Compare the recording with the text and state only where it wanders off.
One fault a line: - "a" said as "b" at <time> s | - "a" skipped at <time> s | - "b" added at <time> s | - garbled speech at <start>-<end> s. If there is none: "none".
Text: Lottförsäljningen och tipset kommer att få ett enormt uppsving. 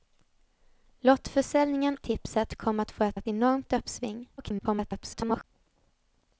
- "och" skipped at 2.0 s
- "ett" added at 3.1 s
- garbled speech at 4.4-5.4 s